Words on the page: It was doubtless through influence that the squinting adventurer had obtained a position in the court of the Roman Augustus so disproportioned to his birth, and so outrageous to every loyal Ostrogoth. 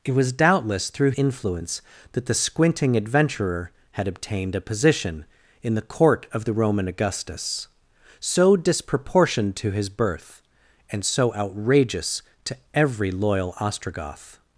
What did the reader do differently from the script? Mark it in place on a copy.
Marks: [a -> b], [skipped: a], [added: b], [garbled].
It was doubtless through influence that the squinting adventurer had obtained a position in the court of the Roman Augustus so disproportioned to his birth, and so outrageous to every loyal Ostrogoth.